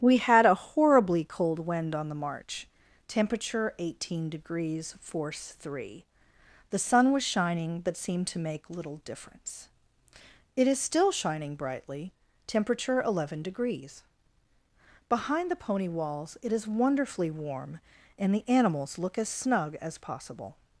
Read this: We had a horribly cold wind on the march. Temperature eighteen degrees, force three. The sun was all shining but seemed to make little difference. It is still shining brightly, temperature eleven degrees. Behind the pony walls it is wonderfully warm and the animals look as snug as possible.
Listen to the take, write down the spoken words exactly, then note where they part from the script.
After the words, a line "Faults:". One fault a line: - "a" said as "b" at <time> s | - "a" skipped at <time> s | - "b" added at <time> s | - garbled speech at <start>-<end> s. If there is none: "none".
We had a horribly cold wind on the march. Temperature eighteen degrees, force three. The sun was shining but seemed to make little difference. It is still shining brightly, temperature eleven degrees. Behind the pony walls it is wonderfully warm and the animals look as snug as possible.
Faults:
- "all" skipped at 7.2 s